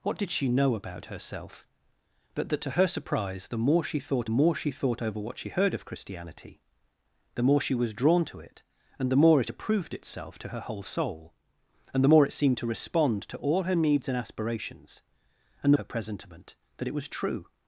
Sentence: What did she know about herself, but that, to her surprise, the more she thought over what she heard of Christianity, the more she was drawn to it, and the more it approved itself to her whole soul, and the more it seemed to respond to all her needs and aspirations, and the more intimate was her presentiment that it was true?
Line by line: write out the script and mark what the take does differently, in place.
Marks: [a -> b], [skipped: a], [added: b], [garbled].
What did she know about herself, but that, to her surprise, the more she thought [added: more she thought] over what she heard of Christianity, the more she was drawn to it, and the more it approved itself to her whole soul, and the more it seemed to respond to all her needs and aspirations, and the [skipped: more intimate was] her presentiment that it was true?